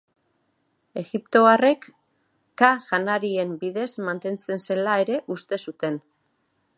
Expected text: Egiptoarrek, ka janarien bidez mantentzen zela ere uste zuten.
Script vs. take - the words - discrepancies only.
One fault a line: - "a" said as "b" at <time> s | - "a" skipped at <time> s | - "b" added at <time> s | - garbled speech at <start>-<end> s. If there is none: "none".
none